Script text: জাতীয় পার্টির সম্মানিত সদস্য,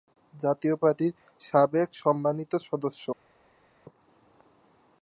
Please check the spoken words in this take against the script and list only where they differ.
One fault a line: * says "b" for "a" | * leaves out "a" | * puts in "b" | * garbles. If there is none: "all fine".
* puts in "সাবেক"